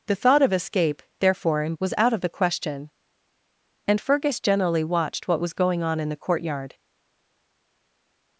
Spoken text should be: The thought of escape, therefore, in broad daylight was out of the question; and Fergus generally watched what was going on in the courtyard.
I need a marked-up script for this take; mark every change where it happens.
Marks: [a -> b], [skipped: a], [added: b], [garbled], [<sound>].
The thought of escape, therefore, in [skipped: broad daylight] was out of the question; and Fergus generally watched what was going on in the courtyard.